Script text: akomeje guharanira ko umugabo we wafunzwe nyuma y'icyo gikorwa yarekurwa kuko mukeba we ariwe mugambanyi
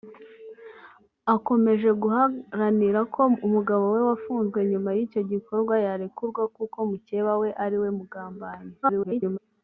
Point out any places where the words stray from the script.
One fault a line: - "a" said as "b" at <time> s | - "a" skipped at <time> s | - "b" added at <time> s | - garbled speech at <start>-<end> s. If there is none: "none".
- garbled speech at 8.8-9.4 s